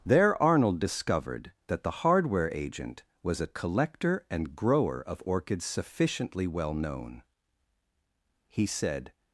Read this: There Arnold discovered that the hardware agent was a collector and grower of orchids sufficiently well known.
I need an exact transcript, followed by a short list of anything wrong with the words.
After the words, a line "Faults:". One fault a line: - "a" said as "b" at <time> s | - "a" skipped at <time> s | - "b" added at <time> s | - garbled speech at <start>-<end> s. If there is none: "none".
There Arnold discovered that the hardware agent was a collector and grower of orchids sufficiently well known. He said
Faults:
- "He said" added at 8.5 s